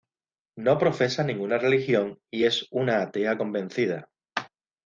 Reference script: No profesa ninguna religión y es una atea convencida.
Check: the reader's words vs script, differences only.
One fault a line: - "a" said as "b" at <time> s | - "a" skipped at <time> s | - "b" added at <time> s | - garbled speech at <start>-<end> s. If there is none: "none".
none